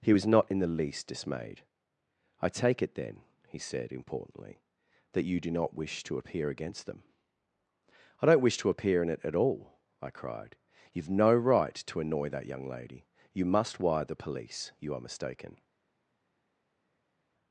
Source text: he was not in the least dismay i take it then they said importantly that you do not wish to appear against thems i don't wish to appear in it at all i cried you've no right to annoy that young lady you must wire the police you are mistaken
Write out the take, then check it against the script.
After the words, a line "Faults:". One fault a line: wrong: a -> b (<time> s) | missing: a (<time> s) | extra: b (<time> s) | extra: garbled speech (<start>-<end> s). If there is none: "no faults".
he was not in the least dismayed i take it then he said importantly that you do not wish to appear against them i don't wish to appear in it at all i cried you've no right to annoy that young lady you must wire the police you are mistaken
Faults:
wrong: dismay -> dismayed (1.1 s)
wrong: they -> he (3.5 s)
wrong: thems -> them (6.8 s)